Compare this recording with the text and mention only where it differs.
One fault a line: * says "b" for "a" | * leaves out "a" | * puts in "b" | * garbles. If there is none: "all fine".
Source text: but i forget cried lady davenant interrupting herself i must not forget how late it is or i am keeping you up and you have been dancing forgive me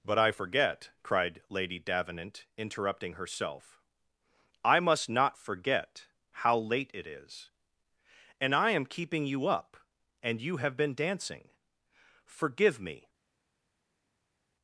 * says "and" for "or"